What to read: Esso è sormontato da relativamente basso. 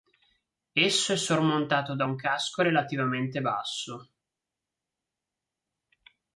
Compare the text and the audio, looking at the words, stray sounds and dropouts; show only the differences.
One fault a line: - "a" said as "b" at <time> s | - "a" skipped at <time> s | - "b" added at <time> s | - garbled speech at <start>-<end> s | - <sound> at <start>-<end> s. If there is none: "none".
- "un casco" added at 2.0 s